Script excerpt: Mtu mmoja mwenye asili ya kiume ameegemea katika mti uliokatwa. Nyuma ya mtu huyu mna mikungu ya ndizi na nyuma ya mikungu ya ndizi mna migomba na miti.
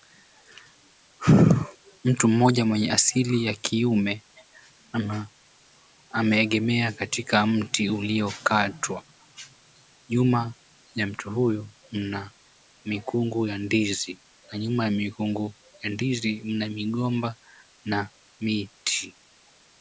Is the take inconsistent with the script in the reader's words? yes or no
no